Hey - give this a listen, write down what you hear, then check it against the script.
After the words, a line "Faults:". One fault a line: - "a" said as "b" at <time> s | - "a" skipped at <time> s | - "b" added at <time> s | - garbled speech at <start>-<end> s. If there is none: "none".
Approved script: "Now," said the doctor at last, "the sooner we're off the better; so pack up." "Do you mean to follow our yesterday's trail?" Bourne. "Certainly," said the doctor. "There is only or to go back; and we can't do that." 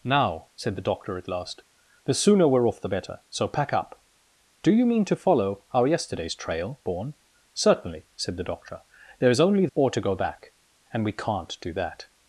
"Now," said the doctor at last, "the sooner we're off the better; so pack up." "Do you mean to follow our yesterday's trail?" Bourne. "Certainly," said the doctor. "There is only or to go back; and we can't do that."
Faults:
none